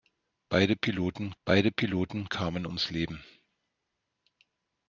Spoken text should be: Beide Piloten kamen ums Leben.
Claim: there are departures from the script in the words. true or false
true